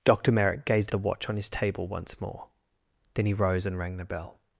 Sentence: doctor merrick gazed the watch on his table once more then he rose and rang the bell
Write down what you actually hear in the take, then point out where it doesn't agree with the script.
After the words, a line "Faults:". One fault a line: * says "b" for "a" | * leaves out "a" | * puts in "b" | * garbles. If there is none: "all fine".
doctor merrick gazed the watch on his table once more then he rose and rang the bell
Faults:
all fine